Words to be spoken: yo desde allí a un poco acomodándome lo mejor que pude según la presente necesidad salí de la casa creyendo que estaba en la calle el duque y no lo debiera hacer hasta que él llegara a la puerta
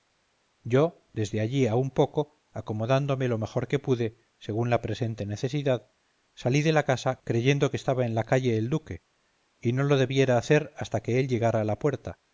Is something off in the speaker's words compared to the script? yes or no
no